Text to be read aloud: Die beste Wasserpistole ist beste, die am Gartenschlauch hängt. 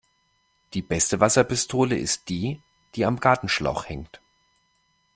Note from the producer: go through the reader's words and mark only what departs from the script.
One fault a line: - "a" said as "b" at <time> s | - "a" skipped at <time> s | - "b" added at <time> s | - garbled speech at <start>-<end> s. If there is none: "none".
- "beste" said as "die" at 2.3 s